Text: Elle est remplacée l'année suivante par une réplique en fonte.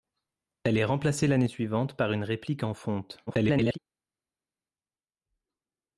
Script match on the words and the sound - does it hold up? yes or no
no